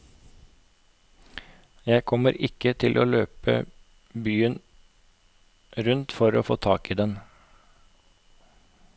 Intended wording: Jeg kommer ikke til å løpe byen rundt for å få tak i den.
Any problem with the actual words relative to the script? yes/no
no